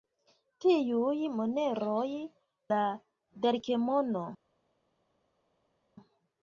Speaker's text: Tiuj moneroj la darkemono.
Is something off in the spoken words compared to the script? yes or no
no